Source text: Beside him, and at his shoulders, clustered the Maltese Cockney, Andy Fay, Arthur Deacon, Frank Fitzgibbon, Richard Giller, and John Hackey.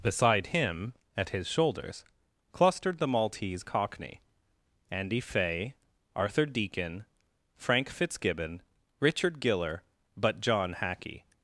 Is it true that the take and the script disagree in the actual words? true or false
true